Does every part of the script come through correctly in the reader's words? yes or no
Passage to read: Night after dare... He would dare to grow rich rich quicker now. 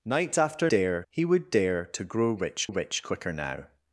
yes